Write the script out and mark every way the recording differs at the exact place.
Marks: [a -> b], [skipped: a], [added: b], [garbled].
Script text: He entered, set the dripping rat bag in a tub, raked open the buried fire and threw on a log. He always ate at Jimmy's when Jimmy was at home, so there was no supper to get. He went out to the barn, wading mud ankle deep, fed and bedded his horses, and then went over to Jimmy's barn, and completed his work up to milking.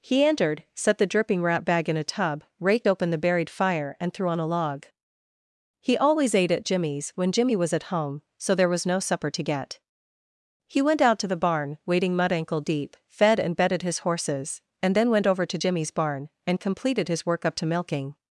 He entered, set the dripping rat bag in a tub, raked open the buried fire and threw on a log. He always ate at Jimmy's when Jimmy was at home, so there was no supper to get. He went out to the barn, wading mud ankle deep, fed and bedded his horses, and then went over to Jimmy's barn, and completed his work up to milking.